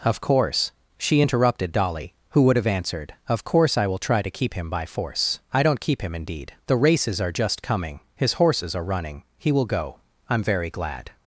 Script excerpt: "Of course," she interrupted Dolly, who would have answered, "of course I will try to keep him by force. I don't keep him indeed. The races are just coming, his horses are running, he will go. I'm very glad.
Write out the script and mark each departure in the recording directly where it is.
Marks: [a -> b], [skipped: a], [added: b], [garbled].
"Of course," she interrupted Dolly, who would have answered, "of course I will try to keep him by force. I don't keep him indeed. The races are just coming, his horses are running, he will go. I'm very glad.